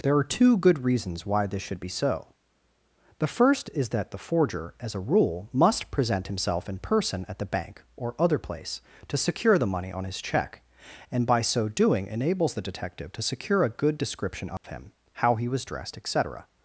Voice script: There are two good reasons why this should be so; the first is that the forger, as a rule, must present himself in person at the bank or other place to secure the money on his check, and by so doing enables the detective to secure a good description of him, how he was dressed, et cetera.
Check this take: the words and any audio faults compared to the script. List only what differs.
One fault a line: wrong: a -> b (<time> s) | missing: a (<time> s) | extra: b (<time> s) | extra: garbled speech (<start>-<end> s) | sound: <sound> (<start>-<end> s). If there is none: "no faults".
sound: dropout (14.6-14.6 s)